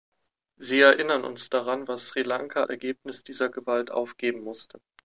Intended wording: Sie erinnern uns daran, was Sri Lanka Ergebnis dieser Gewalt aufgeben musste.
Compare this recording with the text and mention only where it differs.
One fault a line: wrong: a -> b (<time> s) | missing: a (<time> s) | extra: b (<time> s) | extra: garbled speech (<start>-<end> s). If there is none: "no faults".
no faults